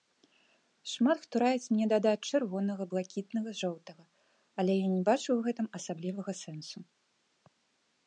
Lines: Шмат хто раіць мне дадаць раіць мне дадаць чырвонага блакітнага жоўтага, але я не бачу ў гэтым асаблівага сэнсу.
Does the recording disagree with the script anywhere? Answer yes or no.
yes